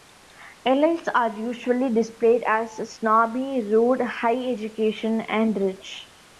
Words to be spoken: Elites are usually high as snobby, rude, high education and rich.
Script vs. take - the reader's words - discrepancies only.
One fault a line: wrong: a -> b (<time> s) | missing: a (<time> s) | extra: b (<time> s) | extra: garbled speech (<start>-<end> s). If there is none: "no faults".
wrong: high -> displayed (1.9 s)